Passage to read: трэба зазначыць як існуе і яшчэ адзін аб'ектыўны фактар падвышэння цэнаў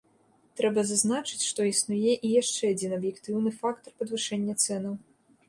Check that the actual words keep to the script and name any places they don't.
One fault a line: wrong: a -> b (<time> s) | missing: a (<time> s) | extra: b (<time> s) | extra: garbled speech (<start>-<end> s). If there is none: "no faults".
wrong: як -> што (1.5 s)